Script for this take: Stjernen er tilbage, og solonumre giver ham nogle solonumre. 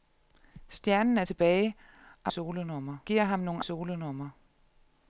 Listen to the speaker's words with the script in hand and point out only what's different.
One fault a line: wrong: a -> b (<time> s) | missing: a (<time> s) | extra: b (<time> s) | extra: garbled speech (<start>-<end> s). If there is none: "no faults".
no faults